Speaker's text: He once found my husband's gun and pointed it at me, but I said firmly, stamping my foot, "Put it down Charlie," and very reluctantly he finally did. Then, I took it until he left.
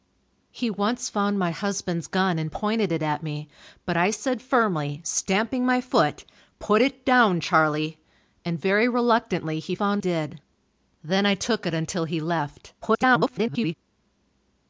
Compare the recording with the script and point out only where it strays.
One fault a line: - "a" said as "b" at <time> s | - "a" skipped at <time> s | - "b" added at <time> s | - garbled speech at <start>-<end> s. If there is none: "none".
- "finally" said as "found" at 9.8 s
- garbled speech at 12.8-13.7 s